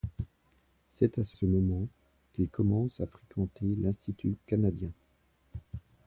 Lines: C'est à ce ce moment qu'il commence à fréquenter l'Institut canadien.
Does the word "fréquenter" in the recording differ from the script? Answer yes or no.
no